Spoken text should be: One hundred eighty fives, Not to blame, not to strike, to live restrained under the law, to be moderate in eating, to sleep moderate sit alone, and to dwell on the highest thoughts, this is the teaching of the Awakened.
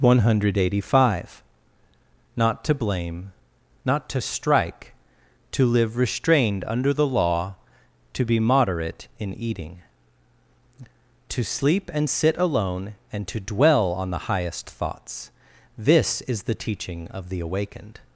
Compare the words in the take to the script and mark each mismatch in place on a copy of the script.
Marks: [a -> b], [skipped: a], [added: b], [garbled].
One hundred eighty [fives, -> five] Not to blame, not to strike, to live restrained under the law, to be moderate in eating, to sleep [moderate -> and] sit alone, and to dwell on the highest thoughts, this is the teaching of the Awakened.